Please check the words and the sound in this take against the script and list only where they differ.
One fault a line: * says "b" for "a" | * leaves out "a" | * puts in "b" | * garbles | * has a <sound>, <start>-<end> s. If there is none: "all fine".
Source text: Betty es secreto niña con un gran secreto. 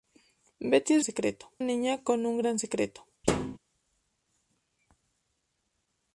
* has a thud, 3.2-3.6 s